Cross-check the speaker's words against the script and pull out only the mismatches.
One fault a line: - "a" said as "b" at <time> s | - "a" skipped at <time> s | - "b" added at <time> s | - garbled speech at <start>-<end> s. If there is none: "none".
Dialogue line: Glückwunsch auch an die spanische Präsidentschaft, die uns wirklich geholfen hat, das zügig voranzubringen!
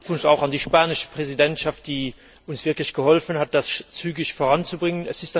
none